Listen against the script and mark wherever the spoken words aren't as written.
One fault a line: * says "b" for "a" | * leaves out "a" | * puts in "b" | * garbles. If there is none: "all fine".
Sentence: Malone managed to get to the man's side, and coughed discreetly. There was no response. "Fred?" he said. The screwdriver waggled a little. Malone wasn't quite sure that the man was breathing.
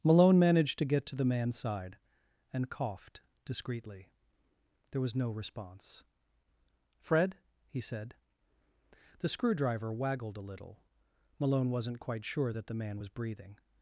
all fine